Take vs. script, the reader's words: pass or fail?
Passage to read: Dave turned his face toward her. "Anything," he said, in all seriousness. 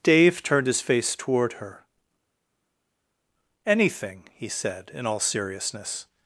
pass